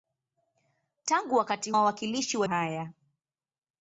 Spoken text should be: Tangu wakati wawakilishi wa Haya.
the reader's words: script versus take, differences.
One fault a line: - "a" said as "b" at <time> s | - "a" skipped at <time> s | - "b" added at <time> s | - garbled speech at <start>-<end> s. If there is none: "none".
none